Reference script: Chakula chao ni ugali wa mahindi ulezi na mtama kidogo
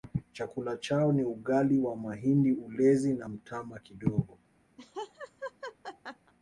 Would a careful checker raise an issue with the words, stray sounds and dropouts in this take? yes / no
yes